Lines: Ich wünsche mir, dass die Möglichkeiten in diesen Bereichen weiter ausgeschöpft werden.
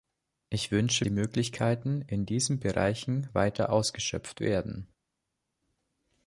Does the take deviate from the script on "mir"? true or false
true